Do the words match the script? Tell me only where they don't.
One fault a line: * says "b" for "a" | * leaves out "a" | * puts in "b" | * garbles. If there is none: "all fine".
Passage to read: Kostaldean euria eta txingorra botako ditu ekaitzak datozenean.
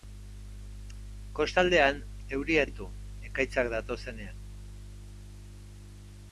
* leaves out "eta txingorra botako"